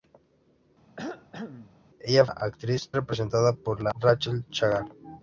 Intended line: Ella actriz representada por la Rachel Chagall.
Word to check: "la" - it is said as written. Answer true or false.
true